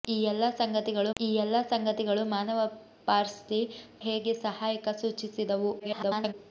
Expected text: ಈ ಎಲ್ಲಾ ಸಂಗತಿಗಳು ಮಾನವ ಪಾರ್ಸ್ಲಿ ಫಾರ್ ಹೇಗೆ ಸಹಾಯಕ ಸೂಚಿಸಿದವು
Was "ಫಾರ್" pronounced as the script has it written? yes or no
no